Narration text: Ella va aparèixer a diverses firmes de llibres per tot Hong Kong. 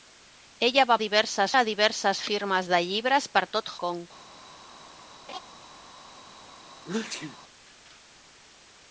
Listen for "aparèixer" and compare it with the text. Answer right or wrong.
wrong